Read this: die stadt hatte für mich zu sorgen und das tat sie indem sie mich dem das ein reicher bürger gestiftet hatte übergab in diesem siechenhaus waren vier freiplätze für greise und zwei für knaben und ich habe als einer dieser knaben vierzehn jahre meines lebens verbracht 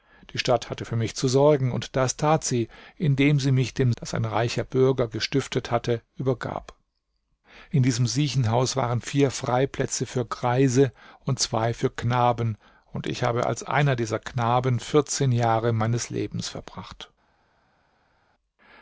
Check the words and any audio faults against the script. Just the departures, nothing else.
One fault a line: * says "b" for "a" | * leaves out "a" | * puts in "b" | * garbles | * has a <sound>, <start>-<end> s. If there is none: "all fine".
all fine